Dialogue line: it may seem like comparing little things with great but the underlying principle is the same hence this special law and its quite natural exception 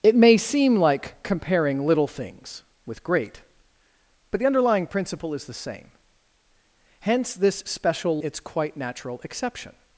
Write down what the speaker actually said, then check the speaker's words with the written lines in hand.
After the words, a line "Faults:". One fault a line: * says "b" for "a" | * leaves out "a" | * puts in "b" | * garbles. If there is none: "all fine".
it may seem like comparing little things with great but the underlying principle is the same hence this special its quite natural exception
Faults:
* leaves out "law and"